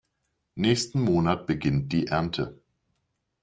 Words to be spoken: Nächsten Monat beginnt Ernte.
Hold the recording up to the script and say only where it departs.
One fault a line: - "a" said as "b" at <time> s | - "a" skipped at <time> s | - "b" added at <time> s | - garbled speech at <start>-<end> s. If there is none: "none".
- "die" added at 1.9 s